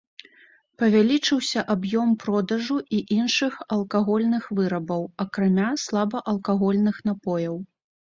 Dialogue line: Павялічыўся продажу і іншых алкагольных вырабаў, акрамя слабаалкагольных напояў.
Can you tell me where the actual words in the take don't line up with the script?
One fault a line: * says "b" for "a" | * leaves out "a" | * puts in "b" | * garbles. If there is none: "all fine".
* puts in "аб'ём"